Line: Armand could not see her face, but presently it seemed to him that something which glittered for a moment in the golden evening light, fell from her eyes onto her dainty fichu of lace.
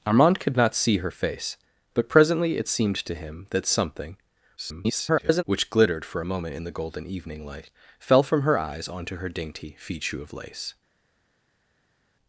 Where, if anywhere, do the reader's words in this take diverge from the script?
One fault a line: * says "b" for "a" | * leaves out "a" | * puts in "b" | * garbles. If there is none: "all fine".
* garbles